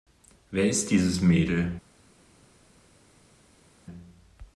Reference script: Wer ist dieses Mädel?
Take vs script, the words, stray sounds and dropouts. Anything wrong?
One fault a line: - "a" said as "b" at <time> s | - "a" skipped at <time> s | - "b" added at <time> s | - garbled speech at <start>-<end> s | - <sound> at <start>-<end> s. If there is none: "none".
none